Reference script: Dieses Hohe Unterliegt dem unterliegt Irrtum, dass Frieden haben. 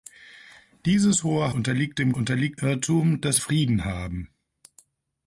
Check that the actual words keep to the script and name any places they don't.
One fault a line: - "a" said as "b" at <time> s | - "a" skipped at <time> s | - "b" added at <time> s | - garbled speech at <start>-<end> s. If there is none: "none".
none